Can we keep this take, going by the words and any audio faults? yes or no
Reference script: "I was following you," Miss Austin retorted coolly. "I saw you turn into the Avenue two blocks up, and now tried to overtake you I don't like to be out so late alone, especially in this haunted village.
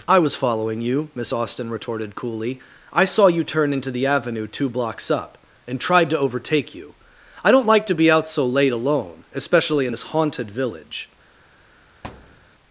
no